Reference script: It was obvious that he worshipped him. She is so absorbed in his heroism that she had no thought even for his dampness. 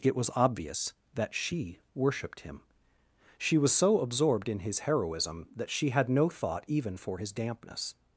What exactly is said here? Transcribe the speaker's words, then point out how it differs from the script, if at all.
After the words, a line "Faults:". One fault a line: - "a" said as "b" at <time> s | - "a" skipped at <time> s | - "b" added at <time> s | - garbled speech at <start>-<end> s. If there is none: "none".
It was obvious that she worshipped him. She was so absorbed in his heroism that she had no thought even for his dampness.
Faults:
- "he" said as "she" at 1.3 s
- "is" said as "was" at 3.6 s